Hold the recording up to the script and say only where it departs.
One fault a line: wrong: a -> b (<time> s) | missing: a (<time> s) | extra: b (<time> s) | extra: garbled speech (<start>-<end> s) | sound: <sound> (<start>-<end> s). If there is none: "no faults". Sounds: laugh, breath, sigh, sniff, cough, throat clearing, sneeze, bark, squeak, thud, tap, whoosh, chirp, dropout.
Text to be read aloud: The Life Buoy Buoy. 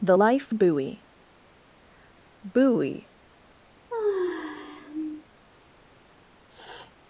sound: sigh (3.9-5.2 s)
sound: sniff (6.5-6.9 s)